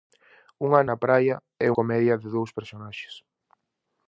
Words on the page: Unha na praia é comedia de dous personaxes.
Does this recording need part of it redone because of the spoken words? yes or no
no